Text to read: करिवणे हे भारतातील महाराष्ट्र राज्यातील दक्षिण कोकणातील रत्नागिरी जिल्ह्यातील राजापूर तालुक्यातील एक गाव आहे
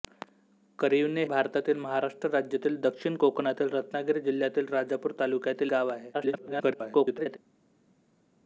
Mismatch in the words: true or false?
true